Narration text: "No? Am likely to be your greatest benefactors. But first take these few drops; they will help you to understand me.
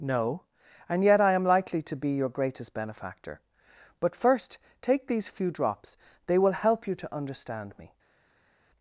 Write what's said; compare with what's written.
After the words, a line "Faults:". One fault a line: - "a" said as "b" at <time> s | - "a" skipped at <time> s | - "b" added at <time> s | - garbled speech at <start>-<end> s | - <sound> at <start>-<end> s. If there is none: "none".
"No? And yet I am likely to be your greatest benefactor. But first take these few drops; they will help you to understand me.
Faults:
- "And yet I" added at 0.9 s
- "benefactors" said as "benefactor" at 2.7 s